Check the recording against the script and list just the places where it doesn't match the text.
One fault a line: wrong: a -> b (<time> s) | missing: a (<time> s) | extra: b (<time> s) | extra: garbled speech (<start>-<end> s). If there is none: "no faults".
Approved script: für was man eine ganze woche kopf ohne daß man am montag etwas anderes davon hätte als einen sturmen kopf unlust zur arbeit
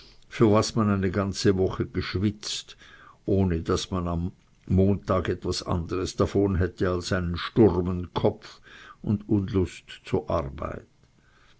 wrong: kopf -> geschwitzt (1.9 s)
extra: und (9.0 s)